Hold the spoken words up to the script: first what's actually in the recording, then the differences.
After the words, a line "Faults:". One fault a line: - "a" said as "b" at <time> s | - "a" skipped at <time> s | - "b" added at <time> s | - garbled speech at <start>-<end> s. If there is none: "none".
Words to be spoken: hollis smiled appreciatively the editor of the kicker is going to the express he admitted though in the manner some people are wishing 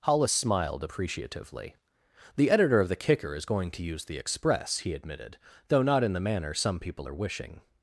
hollis smiled appreciatively the editor of the kicker is going to use the express he admitted though not in the manner some people are wishing
Faults:
- "use" added at 3.8 s
- "not" added at 5.8 s